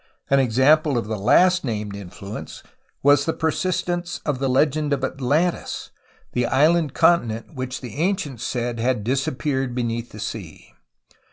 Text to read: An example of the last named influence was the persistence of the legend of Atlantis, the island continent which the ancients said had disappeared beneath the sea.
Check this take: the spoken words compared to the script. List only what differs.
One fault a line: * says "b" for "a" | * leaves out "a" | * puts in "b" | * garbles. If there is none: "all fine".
all fine